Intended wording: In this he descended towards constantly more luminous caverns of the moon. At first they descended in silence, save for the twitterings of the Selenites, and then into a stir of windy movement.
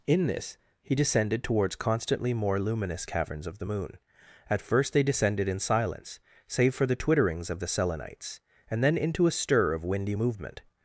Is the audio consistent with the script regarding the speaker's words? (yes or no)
yes